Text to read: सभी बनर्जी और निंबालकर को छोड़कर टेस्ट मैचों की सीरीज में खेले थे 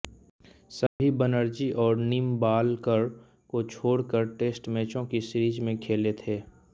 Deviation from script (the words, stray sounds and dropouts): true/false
true